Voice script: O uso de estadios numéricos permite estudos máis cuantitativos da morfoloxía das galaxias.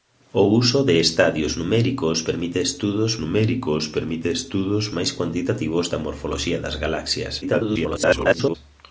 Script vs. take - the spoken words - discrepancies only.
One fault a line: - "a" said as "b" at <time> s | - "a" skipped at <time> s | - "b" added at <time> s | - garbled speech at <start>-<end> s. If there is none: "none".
- "numéricos permite estudos" added at 3.2 s
- garbled speech at 7.4-8.6 s